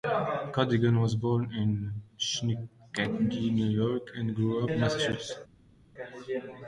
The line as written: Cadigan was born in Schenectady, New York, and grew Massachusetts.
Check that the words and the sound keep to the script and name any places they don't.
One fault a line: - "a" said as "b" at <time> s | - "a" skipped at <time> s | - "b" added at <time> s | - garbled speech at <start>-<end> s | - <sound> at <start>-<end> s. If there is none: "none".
none